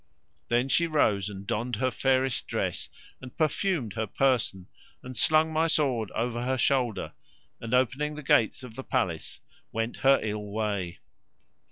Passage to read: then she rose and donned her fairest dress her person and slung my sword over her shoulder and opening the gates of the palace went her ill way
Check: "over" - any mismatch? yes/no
no